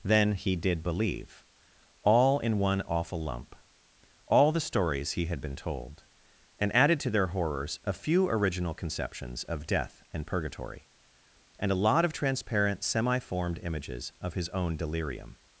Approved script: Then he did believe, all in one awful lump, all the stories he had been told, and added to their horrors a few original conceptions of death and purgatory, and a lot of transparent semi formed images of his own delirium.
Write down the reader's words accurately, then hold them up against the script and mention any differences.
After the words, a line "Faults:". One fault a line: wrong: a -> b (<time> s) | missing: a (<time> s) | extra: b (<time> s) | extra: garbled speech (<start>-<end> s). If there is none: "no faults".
Then he did believe, all in one awful lump, all the stories he had been told, and added to their horrors a few original conceptions of death and purgatory, and a lot of transparent semi formed images of his own delirium.
Faults:
no faults